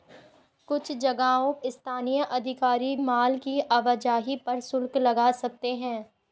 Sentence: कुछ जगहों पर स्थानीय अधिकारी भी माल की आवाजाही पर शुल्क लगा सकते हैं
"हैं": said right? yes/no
yes